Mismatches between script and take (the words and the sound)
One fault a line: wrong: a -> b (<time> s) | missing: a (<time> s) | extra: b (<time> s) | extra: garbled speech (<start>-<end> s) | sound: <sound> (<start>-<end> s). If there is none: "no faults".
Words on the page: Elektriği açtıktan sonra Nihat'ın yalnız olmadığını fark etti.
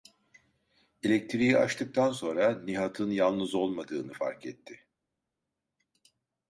no faults